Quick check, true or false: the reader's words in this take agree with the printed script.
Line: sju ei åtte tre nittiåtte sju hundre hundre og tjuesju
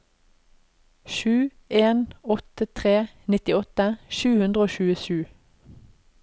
false